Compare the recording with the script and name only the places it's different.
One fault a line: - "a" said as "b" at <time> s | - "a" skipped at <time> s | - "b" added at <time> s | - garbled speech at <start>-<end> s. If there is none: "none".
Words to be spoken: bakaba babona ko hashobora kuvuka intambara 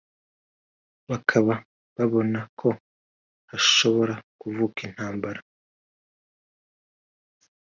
none